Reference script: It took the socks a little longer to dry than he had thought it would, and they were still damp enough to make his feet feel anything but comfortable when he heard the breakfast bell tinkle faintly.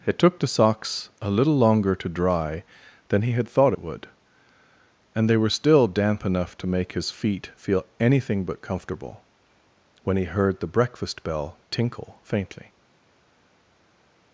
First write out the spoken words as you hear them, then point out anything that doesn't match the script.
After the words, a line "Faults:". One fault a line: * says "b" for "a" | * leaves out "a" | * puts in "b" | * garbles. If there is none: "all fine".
It took the socks a little longer to dry than he had thought it would, and they were still damp enough to make his feet feel anything but comfortable when he heard the breakfast bell tinkle faintly.
Faults:
all fine